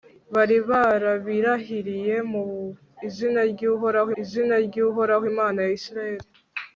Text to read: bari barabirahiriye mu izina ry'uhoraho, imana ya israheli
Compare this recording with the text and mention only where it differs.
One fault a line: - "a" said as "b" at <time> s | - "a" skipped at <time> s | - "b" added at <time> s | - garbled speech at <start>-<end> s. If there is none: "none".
- "izina ry'uhoraho" added at 4.2 s